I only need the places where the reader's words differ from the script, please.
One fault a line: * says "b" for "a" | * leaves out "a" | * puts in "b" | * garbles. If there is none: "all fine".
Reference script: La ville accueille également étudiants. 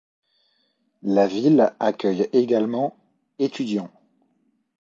all fine